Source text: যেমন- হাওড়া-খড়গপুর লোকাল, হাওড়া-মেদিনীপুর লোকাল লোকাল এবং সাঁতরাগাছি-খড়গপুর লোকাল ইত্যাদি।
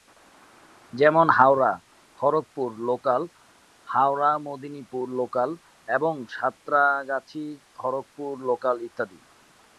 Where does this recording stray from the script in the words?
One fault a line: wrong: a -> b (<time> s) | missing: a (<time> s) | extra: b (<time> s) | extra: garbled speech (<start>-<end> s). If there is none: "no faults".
missing: লোকাল (5.6 s)